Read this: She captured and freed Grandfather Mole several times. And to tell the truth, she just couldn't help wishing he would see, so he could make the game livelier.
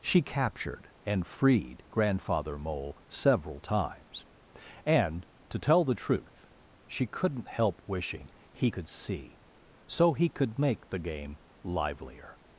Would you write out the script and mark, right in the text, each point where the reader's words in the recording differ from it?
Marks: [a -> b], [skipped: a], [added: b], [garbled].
She captured and freed Grandfather Mole several times. And to tell the truth, she [skipped: just] couldn't help wishing he [would -> could] see, so he could make the game livelier.